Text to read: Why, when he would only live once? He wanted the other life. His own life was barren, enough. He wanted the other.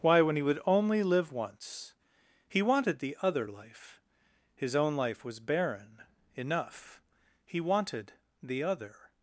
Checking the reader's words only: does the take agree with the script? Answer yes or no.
yes